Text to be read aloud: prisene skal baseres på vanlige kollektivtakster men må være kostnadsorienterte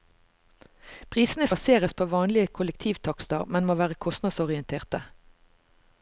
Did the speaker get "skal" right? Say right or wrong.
wrong